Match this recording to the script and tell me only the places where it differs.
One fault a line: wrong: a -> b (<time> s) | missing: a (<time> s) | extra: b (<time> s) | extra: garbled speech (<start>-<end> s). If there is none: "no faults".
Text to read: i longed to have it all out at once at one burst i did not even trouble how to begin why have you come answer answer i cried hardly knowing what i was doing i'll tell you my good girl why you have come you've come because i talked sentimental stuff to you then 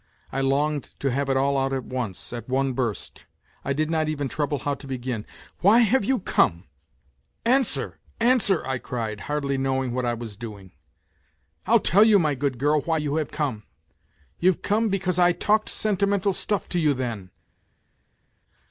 no faults